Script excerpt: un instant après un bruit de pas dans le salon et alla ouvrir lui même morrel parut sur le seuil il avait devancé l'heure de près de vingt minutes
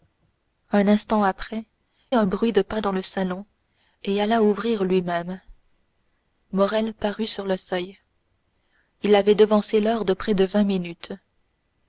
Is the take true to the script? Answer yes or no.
yes